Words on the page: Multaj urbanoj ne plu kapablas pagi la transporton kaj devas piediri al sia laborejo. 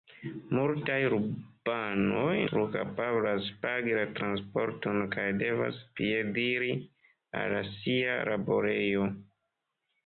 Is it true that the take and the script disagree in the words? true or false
true